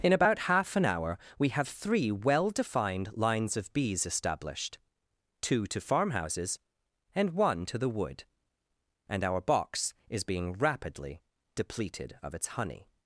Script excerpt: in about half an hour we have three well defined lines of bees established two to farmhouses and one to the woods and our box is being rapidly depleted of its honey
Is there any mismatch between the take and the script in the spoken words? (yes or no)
yes